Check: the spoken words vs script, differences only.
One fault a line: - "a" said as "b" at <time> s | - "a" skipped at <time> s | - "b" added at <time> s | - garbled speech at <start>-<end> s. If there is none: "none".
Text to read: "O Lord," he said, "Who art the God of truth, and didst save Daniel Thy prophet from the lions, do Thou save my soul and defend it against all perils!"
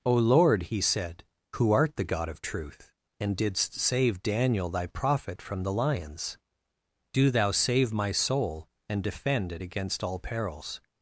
none